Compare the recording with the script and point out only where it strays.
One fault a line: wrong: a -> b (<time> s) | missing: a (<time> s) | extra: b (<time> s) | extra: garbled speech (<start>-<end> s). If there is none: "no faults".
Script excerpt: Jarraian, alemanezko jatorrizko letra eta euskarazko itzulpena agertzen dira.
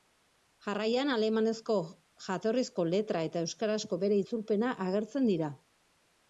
extra: bere (4.1 s)